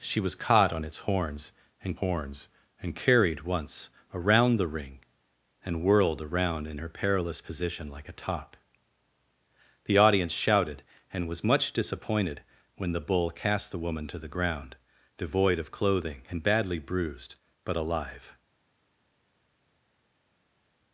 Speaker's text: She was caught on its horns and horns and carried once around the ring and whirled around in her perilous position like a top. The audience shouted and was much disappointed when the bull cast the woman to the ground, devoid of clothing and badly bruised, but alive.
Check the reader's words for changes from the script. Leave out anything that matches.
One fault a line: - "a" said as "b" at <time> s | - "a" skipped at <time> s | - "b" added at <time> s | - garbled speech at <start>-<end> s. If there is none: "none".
none